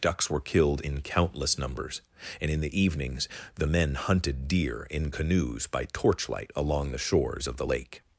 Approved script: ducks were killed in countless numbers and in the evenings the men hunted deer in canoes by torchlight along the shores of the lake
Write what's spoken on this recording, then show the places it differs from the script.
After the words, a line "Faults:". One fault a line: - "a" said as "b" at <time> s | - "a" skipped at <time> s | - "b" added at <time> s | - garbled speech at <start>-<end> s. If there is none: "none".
ducks were killed in countless numbers and in the evenings the men hunted deer in canoes by torchlight along the shores of the lake
Faults:
none